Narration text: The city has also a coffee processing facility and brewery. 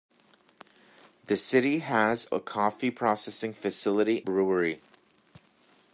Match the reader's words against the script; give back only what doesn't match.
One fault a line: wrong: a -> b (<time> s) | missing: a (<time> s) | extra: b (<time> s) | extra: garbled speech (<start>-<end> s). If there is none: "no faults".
missing: also (2.2 s)
missing: and (4.2 s)